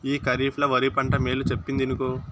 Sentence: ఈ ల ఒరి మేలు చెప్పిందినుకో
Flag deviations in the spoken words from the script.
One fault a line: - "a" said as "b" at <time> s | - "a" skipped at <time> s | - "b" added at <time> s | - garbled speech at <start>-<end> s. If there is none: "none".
- "కరీఫ్" added at 0.2 s
- "పంట" added at 0.9 s